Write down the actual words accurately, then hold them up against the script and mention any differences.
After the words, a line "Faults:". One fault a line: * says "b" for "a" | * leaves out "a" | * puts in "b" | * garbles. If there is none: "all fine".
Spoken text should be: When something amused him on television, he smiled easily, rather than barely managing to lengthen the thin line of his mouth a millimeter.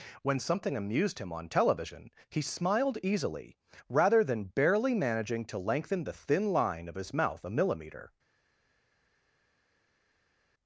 When something amused him on television, he smiled easily, rather than barely managing to lengthen the thin line of his mouth a millimeter.
Faults:
all fine